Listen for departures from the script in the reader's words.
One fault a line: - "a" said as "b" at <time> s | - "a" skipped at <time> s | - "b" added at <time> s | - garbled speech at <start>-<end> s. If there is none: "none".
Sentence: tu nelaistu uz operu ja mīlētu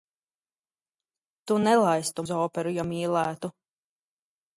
none